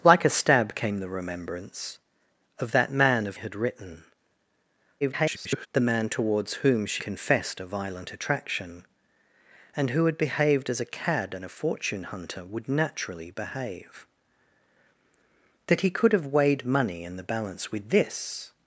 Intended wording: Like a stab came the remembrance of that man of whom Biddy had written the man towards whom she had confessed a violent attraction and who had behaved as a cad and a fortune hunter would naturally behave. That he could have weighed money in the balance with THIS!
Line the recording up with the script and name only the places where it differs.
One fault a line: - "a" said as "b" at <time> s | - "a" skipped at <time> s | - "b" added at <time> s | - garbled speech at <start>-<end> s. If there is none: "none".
- "whom Biddy" skipped at 3.4 s
- garbled speech at 5.0-5.7 s
- "had" skipped at 7.0 s